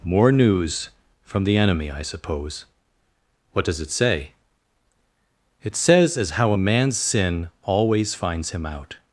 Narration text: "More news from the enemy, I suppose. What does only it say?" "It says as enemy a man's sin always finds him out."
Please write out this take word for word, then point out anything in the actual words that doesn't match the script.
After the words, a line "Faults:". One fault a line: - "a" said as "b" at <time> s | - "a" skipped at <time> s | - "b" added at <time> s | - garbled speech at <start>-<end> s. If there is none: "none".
"More news from the enemy, I suppose. What does it say?" "It says as how a man's sin always finds him out."
Faults:
- "only" skipped at 3.8 s
- "enemy" said as "how" at 6.3 s